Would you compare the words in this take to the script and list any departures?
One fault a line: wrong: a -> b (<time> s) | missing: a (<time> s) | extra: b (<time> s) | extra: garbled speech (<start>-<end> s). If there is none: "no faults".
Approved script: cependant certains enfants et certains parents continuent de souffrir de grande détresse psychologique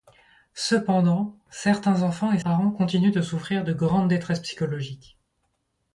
missing: certains (2.4 s)